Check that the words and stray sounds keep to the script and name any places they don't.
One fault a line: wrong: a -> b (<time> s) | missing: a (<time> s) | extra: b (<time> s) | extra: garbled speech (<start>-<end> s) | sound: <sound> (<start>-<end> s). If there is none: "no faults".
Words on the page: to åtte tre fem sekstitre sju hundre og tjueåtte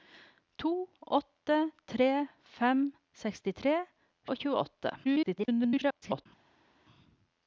missing: sju hundre (3.8 s)
extra: garbled speech (5.0-6.3 s)